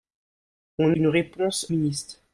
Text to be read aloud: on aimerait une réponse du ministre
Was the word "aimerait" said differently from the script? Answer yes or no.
yes